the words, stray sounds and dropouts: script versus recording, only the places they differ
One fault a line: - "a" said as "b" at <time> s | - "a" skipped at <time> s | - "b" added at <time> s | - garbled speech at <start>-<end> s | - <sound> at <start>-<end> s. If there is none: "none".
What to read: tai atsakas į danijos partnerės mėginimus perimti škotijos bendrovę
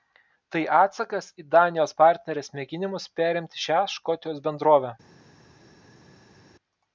- "šią" added at 3.6 s